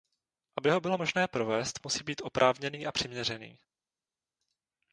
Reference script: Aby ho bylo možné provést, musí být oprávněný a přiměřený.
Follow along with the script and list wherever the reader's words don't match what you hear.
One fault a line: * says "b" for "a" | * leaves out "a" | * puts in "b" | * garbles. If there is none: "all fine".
all fine